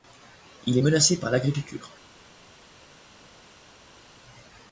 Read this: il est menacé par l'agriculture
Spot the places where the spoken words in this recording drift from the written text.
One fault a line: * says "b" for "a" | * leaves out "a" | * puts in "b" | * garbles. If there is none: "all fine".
all fine